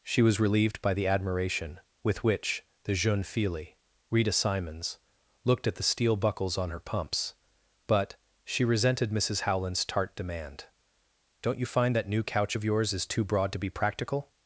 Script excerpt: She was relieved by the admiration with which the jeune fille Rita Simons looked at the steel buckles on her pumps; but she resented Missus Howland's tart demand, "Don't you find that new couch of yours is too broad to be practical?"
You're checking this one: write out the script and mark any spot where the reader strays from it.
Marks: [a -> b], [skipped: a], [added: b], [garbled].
She was relieved by the admiration with which the jeune fille Rita Simons looked at the steel buckles on her pumps; but she resented Missus Howland's tart demand, "Don't you find that new couch of yours is too broad to be practical?"